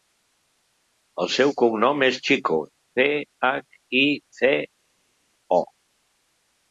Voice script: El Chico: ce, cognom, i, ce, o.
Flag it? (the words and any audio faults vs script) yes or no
yes